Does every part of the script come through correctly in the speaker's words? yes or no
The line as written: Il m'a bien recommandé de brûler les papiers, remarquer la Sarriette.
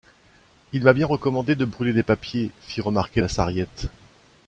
no